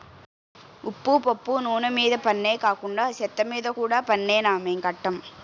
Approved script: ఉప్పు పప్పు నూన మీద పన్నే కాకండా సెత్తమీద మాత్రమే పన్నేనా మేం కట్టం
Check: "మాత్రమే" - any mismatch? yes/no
yes